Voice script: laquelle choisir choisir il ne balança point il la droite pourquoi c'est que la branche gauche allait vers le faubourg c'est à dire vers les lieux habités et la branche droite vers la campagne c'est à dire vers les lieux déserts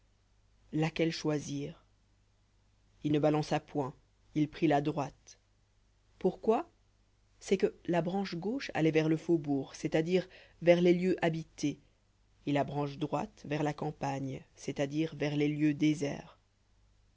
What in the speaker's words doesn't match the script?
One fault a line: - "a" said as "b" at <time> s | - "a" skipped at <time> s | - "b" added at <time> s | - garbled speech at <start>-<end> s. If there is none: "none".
- "choisir" skipped at 1.9 s
- "prit" added at 4.5 s